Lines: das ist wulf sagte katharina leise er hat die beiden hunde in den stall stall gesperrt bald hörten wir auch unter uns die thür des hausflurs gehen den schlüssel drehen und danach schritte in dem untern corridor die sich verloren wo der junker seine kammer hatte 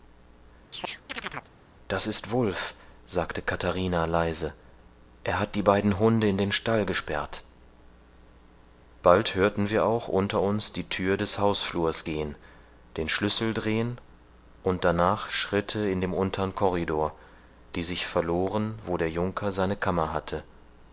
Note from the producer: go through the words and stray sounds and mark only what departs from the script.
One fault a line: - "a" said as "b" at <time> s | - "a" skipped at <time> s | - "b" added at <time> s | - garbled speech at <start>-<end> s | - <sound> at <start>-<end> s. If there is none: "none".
- chirp at 0.7-1.5 s
- "stall" skipped at 6.8 s